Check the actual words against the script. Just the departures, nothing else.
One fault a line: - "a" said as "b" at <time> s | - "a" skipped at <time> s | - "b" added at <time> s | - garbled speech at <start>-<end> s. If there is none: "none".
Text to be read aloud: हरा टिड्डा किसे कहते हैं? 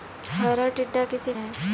- "कहते" skipped at 1.3 s